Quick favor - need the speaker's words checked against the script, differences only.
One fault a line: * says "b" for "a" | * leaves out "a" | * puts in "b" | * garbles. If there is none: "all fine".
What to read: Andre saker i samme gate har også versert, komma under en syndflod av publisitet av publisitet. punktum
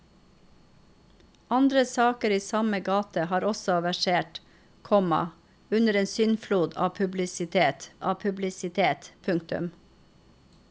all fine